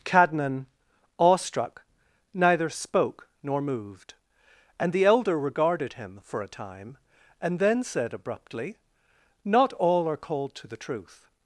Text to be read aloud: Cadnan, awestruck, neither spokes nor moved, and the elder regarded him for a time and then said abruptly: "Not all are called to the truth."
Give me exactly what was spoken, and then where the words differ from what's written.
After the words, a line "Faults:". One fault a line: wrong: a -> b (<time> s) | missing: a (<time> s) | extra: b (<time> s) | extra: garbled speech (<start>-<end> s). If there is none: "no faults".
Cadnan, awestruck, neither spoke nor moved, and the elder regarded him for a time and then said abruptly: "Not all are called to the truth."
Faults:
wrong: spokes -> spoke (2.7 s)